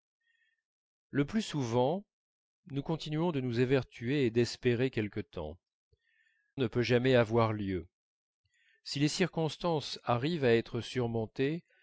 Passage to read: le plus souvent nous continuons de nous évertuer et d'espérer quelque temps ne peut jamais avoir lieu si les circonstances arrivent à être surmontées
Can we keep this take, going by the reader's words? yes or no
yes